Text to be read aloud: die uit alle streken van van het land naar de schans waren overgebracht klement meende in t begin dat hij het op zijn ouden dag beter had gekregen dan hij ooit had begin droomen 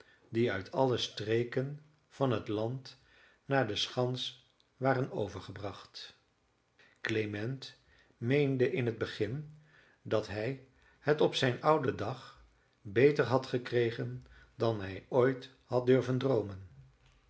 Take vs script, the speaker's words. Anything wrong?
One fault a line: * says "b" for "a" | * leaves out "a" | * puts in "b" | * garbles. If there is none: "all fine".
* leaves out "van"
* says "durven" for "begin"